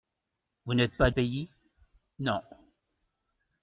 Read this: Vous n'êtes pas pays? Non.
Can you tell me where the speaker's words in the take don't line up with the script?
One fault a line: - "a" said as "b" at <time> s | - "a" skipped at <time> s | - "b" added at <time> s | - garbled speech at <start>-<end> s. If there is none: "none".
none